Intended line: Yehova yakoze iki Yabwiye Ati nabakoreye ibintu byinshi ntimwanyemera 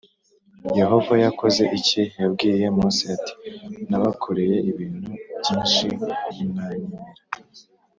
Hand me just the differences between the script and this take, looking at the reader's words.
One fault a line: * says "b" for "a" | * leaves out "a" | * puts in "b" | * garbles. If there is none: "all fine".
* puts in "Mose"